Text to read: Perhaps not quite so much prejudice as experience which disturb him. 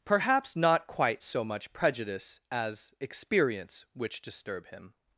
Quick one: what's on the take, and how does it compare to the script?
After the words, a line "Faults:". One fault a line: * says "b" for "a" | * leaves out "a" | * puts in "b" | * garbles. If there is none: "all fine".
Perhaps not quite so much prejudice as experience which disturb him.
Faults:
all fine